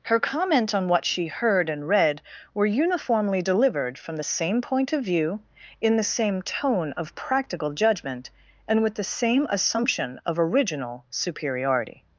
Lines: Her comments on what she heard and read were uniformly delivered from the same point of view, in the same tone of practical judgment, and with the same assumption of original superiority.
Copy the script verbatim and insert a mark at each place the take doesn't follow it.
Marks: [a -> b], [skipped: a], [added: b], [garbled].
Her [comments -> comment] on what she heard and read were uniformly delivered from the same point of view, in the same tone of practical judgment, and with the same assumption of original superiority.